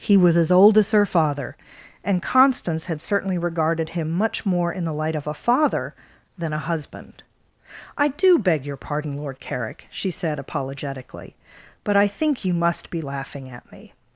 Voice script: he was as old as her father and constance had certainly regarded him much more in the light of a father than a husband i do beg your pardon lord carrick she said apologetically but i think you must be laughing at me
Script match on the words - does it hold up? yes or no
yes